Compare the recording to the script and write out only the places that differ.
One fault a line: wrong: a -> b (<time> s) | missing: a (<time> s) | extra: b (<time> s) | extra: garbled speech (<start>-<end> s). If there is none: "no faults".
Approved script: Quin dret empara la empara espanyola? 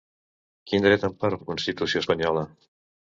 wrong: empara -> constitució (1.5 s)